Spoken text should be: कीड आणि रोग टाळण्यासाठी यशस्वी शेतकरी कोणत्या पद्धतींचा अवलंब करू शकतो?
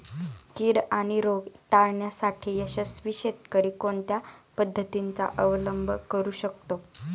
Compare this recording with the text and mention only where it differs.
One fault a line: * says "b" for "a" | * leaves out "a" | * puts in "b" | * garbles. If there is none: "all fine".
all fine